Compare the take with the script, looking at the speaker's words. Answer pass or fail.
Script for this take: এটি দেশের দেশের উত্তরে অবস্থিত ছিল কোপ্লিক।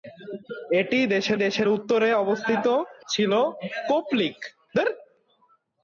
pass